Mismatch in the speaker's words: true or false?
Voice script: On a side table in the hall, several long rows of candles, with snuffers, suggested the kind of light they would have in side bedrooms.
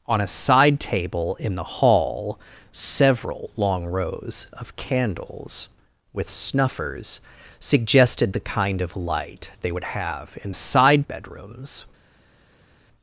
false